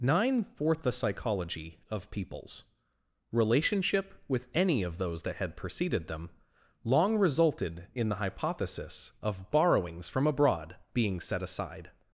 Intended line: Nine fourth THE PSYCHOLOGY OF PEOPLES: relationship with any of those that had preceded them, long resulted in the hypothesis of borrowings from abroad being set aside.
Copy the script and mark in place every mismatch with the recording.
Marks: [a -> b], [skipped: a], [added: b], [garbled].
Nine fourth THE PSYCHOLOGY OF PEOPLES: relationship with any of those that had preceded them, long resulted in the hypothesis of borrowings from abroad being set aside.